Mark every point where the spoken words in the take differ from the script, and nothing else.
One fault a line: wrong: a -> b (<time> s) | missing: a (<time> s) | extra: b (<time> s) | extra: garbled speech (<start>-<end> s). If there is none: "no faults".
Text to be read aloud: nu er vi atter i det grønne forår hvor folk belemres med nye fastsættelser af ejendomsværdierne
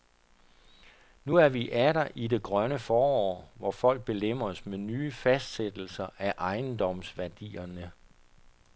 no faults